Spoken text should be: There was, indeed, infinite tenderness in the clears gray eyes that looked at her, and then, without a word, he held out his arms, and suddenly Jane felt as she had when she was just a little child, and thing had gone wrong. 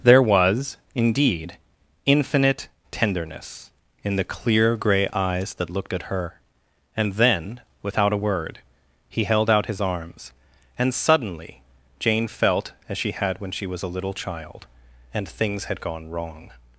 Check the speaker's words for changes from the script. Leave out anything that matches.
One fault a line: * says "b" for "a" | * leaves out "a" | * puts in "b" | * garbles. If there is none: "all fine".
* says "clear" for "clears"
* leaves out "just"
* says "things" for "thing"